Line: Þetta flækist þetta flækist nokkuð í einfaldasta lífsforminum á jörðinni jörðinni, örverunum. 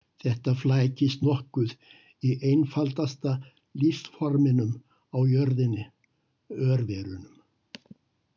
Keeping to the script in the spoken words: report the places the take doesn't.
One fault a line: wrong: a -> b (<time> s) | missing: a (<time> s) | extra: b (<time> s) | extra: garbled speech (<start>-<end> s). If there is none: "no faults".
missing: þetta flækist (1.2 s)
missing: jörðinni (5.9 s)